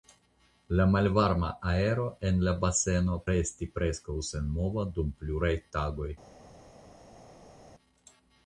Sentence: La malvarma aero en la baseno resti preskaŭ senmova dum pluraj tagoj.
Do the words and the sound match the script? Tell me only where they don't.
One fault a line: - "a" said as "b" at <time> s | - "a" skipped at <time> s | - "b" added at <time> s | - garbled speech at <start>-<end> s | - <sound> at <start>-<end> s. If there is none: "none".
none